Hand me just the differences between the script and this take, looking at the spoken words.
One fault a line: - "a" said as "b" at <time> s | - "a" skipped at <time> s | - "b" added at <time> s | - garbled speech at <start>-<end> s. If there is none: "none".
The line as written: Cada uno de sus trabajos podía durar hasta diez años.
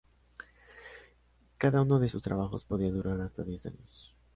none